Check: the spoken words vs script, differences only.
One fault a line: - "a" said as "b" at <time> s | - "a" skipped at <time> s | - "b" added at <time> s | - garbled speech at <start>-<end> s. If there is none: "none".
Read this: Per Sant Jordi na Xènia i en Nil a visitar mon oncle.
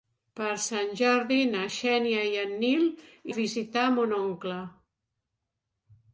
none